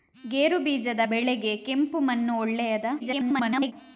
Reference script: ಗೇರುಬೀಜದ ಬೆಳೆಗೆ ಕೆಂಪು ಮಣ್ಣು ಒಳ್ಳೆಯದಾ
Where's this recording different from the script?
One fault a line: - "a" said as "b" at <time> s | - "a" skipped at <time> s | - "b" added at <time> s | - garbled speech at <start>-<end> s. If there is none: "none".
- garbled speech at 3.0-3.7 s